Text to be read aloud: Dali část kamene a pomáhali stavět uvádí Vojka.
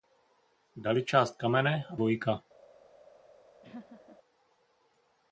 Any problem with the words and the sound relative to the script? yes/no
yes